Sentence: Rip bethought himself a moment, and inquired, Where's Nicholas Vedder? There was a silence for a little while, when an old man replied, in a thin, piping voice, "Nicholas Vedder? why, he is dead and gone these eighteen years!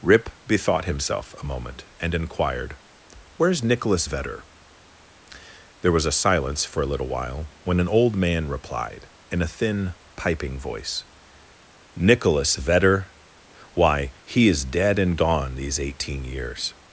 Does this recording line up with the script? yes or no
yes